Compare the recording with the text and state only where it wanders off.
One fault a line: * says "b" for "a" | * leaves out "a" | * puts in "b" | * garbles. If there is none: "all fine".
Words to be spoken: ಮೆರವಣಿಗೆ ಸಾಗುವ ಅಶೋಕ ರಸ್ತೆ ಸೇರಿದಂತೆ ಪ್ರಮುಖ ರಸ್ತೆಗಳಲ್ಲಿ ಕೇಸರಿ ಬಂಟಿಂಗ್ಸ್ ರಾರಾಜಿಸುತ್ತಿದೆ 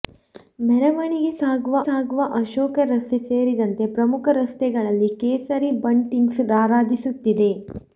* puts in "ಸಾಗುವ"